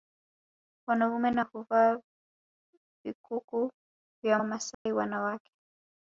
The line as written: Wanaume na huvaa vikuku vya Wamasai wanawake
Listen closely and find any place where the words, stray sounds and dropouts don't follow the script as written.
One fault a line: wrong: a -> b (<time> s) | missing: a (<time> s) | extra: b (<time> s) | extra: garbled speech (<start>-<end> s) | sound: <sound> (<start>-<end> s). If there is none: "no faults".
sound: dropout (4.7-4.9 s)